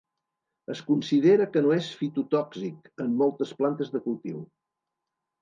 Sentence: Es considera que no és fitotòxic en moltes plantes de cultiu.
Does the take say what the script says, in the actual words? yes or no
yes